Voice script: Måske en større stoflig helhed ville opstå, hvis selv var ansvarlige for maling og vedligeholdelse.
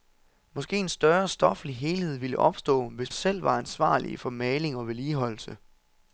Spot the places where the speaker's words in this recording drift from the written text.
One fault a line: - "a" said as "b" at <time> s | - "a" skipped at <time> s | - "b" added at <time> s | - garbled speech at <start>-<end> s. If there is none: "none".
none